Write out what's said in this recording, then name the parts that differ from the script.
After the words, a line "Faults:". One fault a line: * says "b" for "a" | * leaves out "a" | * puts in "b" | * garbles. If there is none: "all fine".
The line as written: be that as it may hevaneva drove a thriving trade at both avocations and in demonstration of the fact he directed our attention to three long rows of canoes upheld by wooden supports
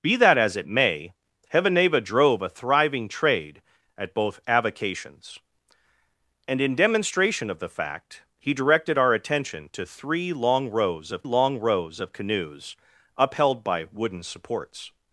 be that as it may hevaneva drove a thriving trade at both avocations and in demonstration of the fact he directed our attention to three long rows of long rows of canoes upheld by wooden supports
Faults:
* puts in "long rows of"